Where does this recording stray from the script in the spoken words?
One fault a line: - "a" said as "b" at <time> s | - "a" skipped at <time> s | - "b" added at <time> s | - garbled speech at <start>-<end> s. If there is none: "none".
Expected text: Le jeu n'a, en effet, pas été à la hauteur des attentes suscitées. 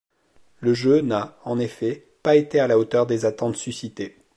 none